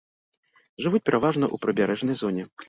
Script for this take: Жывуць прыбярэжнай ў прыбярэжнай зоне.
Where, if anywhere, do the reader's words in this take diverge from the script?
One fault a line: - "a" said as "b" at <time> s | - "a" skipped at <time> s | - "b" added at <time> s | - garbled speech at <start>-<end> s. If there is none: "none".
- "прыбярэжнай" said as "пераважна" at 1.1 s